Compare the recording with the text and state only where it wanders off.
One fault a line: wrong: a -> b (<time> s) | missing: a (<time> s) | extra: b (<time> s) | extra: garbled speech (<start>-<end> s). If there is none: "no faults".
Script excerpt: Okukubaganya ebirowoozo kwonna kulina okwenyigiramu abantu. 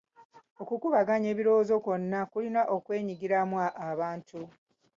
no faults